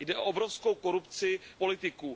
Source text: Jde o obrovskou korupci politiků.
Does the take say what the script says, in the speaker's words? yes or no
yes